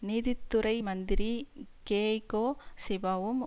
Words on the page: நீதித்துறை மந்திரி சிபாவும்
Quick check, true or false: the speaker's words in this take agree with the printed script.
false